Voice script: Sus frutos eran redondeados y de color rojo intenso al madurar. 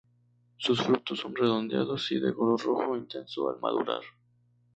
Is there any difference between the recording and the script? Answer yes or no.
yes